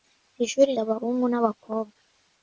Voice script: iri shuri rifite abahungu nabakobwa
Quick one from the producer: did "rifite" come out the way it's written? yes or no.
no